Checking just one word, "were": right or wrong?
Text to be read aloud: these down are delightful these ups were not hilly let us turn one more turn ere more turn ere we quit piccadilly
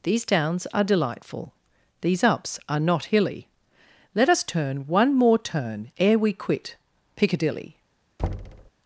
wrong